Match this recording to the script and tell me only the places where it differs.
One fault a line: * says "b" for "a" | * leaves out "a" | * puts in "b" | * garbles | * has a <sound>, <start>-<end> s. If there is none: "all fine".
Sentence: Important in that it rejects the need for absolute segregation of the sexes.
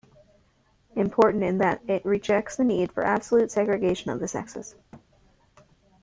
* has a thud, 4.9-5.1 s